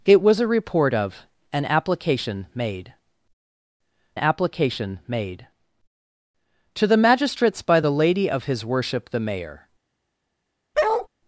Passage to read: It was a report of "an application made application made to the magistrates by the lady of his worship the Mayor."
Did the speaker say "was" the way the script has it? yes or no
yes